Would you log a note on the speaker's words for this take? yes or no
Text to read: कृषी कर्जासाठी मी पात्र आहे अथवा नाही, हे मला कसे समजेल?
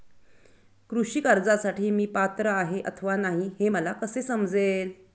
no